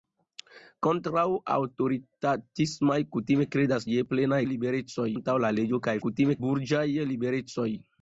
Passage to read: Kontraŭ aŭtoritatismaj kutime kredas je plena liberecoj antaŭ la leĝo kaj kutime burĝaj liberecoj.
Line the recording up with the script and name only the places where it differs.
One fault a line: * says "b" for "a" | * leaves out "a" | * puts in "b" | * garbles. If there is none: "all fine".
all fine